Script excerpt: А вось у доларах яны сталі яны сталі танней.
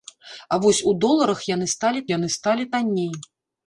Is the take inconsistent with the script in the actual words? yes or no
no